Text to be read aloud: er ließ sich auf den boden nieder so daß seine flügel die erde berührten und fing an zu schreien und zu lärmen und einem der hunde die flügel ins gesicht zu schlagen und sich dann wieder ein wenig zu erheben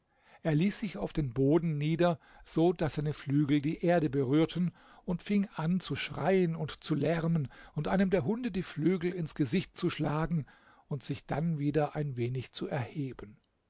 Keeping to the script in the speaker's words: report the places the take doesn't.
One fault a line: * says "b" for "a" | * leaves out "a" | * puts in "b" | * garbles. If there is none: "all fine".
all fine